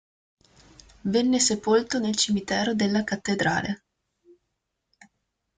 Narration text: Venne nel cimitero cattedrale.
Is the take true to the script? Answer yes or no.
no